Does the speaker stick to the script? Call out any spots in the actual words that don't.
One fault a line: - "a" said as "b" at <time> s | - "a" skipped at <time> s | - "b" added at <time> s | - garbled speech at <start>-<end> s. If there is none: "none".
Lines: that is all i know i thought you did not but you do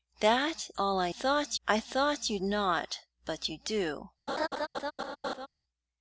- "is" skipped at 0.7 s
- "know" said as "thought" at 1.1 s
- "did" skipped at 2.4 s